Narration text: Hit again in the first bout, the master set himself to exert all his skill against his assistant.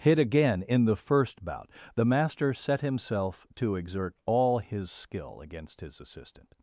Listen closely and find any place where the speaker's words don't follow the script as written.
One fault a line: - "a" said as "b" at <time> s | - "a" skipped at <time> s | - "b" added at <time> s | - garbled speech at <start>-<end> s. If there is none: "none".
none